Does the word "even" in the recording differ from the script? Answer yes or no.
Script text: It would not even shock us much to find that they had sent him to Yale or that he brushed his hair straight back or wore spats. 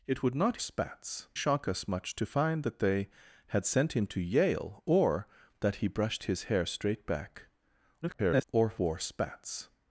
yes